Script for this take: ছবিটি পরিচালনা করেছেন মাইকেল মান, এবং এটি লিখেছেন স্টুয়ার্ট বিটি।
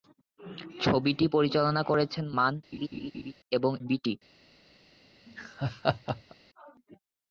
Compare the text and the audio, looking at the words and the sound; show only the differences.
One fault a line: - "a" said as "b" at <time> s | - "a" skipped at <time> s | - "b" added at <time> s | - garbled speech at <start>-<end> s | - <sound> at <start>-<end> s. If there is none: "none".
- "মাইকেল" skipped at 2.2 s
- laugh at 2.7-3.3 s
- "এটি লিখেছেন স্টুয়ার্ট" skipped at 3.7 s
- laugh at 5.3-6.4 s